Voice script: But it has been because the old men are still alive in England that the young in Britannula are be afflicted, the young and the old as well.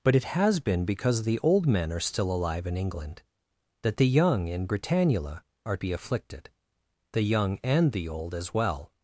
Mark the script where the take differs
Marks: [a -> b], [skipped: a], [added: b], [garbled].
But it has been because the old men are still alive in England that the young in Britannula are be afflicted, the young and the old as well.